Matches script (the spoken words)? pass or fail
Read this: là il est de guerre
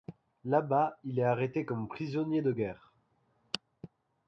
fail